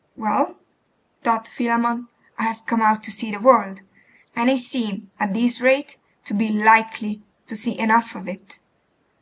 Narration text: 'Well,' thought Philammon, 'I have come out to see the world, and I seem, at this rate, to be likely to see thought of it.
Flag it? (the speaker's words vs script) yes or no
yes